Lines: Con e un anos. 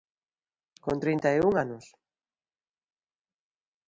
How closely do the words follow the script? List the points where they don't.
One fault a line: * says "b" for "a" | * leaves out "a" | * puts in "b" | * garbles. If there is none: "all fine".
* puts in "trinta"